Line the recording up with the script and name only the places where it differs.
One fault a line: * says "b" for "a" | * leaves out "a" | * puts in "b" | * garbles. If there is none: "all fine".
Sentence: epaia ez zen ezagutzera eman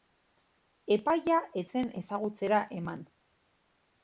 all fine